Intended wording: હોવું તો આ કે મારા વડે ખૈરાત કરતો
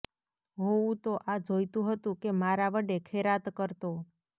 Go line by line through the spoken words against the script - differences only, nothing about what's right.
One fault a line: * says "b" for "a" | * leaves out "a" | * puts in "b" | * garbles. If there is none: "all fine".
* puts in "જોઈતું હતું"